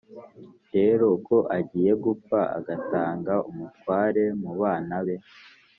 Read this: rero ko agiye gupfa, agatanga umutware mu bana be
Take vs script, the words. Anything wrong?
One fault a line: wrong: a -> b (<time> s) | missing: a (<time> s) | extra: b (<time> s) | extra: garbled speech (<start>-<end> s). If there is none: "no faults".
no faults